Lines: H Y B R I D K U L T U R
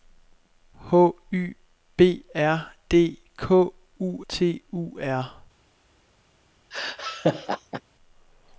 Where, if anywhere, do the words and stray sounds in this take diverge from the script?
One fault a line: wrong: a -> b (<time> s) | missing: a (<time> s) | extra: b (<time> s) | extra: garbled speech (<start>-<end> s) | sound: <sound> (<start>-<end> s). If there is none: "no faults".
missing: I (2.7 s)
missing: L (4.3 s)
sound: laugh (6.7-7.8 s)